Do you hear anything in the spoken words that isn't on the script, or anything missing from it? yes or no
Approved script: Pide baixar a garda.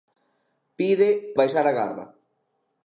no